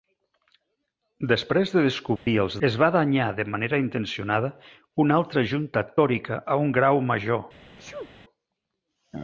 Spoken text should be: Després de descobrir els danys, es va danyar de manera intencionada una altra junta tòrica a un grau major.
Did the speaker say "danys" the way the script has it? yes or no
no